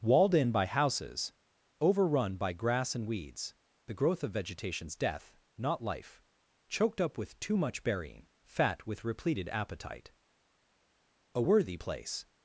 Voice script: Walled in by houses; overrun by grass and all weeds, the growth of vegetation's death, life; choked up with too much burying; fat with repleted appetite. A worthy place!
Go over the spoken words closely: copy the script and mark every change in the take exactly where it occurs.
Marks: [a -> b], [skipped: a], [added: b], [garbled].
Walled in by houses; overrun by grass and [skipped: all] weeds, the growth of vegetation's death, [added: not] life; choked up with too much burying; fat with repleted appetite. A worthy place!